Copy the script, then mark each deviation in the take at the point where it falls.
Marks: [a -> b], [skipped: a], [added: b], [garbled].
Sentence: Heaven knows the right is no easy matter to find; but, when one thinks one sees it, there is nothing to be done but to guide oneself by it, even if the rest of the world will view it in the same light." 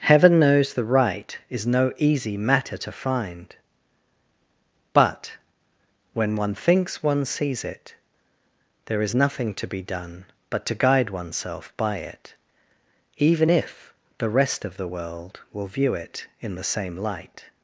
Heaven knows the right is no easy matter to find; but, when one thinks one sees it, there is nothing to be done but to guide oneself by it, even if the rest of the world will view it in the same light."